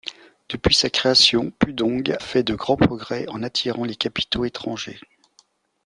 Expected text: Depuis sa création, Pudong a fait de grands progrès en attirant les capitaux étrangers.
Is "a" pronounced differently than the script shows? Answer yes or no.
yes